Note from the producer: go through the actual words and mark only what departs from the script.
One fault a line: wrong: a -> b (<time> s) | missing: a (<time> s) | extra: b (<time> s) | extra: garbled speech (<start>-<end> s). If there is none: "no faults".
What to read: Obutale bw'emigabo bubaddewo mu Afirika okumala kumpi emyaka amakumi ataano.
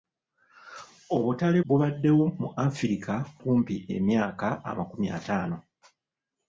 missing: bw'emigabo (1.6 s)
missing: okumala (3.1 s)